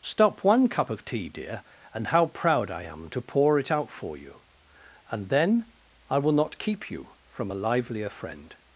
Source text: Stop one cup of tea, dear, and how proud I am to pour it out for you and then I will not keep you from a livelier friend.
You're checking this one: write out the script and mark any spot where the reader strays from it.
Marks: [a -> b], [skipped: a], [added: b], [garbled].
Stop one cup of tea, dear, and how proud I am to pour it out for you and then I will not keep you from a livelier friend.